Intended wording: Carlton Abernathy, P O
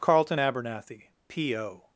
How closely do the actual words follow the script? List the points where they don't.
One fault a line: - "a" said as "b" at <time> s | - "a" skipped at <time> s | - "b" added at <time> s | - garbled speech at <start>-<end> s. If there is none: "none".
none